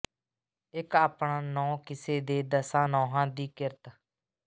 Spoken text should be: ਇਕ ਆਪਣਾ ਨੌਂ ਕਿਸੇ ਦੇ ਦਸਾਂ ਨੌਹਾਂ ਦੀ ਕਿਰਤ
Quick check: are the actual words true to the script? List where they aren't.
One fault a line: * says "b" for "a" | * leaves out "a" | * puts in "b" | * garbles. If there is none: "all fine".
all fine